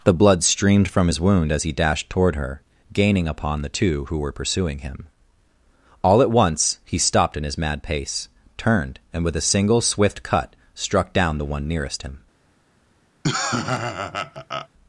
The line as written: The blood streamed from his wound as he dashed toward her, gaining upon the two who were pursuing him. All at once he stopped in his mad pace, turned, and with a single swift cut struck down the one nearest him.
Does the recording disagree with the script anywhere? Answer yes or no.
no